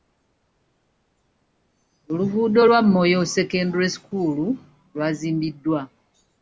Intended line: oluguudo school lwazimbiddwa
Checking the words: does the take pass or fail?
fail